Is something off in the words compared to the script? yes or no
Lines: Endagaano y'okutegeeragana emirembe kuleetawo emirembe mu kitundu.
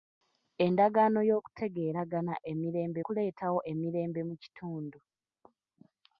no